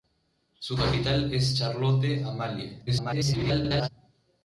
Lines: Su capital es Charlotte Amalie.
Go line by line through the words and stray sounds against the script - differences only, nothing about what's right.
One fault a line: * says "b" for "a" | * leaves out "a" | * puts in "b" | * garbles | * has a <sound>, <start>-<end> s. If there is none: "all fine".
* garbles